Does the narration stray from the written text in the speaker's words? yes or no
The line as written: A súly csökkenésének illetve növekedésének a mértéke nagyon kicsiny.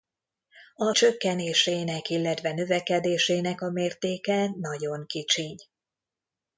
yes